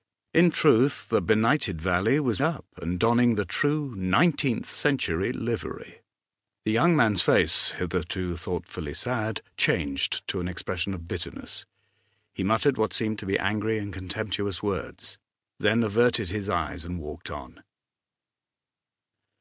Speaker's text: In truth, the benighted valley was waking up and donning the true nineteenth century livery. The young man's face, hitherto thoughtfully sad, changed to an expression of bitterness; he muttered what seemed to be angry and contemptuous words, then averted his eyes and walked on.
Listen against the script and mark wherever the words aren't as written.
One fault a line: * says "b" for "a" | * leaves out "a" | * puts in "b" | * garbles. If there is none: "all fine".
* leaves out "waking"